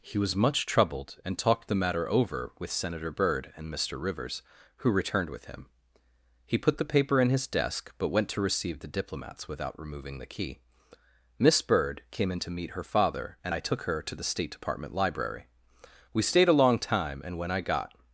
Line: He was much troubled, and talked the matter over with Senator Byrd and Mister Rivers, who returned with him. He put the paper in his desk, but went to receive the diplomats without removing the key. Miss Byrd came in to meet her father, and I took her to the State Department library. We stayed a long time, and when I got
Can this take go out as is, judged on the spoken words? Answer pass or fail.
pass